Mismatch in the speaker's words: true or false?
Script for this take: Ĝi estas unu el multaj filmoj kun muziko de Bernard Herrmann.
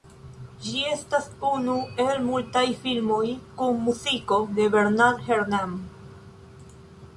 false